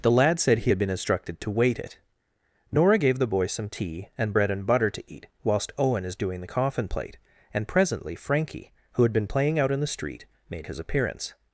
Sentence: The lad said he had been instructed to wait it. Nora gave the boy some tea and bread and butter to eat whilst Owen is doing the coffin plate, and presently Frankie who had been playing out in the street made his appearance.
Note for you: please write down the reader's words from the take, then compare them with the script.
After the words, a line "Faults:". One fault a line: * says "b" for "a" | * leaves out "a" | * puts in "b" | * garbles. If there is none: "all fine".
The lad said he had been instructed to wait it. Nora gave the boy some tea and bread and butter to eat whilst Owen is doing the coffin plate, and presently Frankie who had been playing out in the street made his appearance.
Faults:
all fine